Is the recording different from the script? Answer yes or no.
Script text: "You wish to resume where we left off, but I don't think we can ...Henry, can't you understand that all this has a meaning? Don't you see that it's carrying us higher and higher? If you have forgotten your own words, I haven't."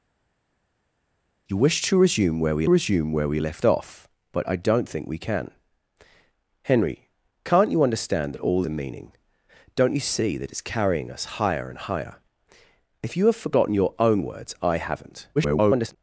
yes